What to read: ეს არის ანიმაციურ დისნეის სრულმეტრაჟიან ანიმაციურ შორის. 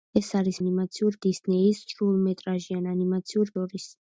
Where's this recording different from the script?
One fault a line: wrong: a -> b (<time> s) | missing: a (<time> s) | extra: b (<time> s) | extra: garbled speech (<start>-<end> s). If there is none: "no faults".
no faults